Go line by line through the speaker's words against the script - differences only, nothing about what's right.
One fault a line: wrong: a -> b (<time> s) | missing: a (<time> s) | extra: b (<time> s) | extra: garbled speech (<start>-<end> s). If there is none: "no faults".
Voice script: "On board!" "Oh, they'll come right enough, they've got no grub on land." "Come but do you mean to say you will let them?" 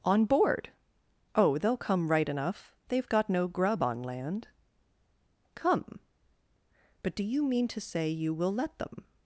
no faults